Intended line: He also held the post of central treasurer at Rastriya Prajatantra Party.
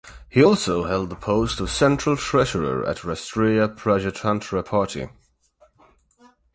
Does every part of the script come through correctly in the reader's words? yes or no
yes